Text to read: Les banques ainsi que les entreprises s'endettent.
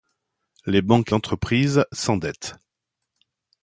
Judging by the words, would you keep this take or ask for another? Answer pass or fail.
fail